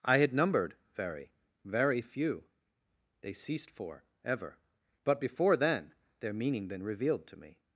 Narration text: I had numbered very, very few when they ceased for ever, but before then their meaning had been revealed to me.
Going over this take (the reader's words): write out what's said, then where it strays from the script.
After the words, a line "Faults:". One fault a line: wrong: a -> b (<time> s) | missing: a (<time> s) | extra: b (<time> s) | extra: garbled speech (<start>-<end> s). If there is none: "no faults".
I had numbered very, very few they ceased for ever, but before then their meaning been revealed to me.
Faults:
missing: when (2.5 s)
missing: had (6.7 s)